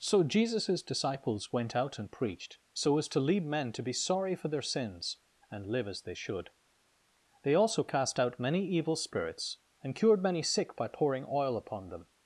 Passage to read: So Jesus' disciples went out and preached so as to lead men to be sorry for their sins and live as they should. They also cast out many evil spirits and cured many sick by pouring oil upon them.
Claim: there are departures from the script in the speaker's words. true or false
false